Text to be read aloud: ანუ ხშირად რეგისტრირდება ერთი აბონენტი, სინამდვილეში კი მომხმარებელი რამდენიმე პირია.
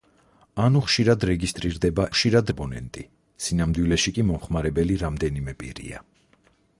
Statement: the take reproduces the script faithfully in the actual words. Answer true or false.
false